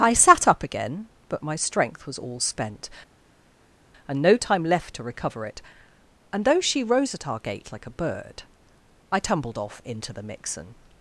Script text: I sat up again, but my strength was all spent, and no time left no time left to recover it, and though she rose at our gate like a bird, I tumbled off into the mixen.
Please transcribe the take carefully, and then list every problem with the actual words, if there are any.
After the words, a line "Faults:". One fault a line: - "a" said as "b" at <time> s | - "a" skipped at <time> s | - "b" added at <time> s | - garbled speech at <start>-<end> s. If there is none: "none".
I sat up again, but my strength was all spent, and no time left to recover it, and though she rose at our gate like a bird, I tumbled off into the mixen.
Faults:
- "no time left" skipped at 4.9 s